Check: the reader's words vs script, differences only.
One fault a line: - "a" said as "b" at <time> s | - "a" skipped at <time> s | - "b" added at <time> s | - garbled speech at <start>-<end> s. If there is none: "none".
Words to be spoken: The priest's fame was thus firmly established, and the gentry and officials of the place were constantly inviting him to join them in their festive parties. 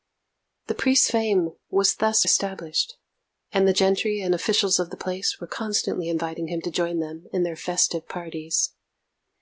- "firmly" skipped at 2.2 s